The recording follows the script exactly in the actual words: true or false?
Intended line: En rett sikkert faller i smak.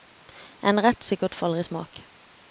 true